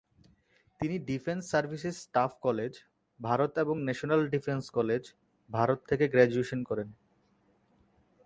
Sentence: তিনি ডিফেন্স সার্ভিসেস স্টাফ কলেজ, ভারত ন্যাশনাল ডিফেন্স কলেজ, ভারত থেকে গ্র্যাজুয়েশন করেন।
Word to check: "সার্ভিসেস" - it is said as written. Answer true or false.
true